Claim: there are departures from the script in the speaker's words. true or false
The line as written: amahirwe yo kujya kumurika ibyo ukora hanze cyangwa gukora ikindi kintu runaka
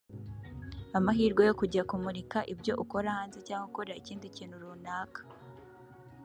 false